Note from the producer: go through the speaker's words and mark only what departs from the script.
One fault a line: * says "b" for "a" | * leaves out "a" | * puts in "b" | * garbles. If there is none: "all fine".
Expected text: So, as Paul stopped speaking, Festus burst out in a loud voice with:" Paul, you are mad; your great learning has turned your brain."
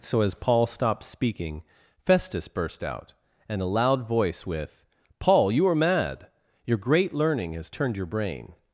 * says "and" for "in"